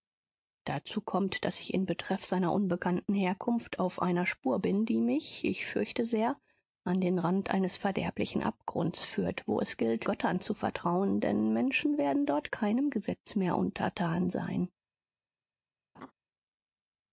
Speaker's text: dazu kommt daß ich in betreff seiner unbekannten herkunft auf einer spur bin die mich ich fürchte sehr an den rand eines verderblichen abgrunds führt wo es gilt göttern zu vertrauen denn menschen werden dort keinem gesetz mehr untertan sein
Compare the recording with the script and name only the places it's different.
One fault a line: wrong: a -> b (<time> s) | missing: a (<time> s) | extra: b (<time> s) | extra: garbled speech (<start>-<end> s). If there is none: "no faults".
no faults